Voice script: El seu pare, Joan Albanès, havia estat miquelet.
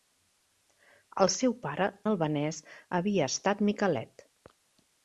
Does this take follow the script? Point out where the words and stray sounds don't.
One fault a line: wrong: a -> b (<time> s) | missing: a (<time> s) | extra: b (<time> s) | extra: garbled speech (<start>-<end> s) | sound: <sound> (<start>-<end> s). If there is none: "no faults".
missing: Joan (1.9 s)